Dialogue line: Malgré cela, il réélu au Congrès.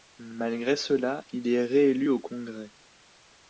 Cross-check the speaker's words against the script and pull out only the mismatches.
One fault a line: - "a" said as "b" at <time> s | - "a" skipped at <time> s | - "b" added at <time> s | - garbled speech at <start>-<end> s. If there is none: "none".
- "est" added at 1.5 s